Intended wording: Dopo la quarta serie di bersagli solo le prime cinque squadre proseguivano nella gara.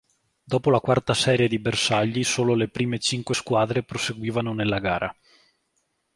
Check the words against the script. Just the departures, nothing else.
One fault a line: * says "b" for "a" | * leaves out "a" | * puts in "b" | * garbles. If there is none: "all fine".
all fine